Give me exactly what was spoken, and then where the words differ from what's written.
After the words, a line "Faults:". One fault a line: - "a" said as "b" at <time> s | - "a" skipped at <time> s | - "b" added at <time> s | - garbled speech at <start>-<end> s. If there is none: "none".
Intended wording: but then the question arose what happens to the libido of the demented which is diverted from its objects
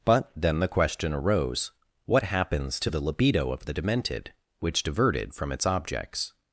but then the question arose what happens to the libido of the demented which diverted from its objects
Faults:
- "is" skipped at 4.8 s